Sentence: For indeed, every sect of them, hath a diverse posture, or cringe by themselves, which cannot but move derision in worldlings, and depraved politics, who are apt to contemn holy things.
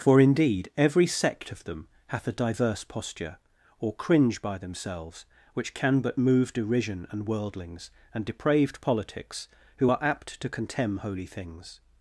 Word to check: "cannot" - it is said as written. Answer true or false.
false